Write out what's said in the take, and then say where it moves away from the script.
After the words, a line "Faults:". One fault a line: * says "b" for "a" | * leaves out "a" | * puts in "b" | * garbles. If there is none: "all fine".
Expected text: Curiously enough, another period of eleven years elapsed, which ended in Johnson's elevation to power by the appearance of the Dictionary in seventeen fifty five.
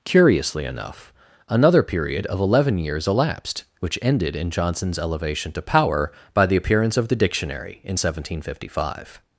Curiously enough, another period of eleven years elapsed, which ended in Johnson's elevation to power by the appearance of the Dictionary in seventeen fifty five.
Faults:
all fine